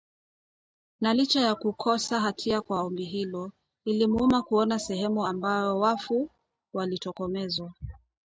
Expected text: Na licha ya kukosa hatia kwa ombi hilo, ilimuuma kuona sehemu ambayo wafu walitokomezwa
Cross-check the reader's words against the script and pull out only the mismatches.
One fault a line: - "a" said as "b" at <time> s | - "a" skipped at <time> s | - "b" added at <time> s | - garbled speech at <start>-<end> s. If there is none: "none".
none